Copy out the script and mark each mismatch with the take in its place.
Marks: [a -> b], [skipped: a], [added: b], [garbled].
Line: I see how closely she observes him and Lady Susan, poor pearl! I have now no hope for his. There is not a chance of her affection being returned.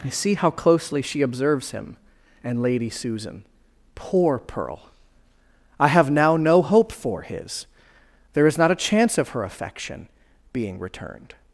I see how closely she observes him and Lady Susan, poor pearl! I have now no hope for his. There is not a chance of her affection being returned.